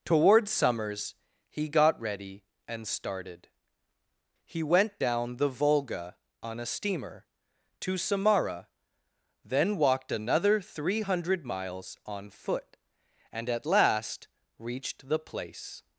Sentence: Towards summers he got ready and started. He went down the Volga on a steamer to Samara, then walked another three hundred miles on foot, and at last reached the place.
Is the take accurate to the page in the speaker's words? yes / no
yes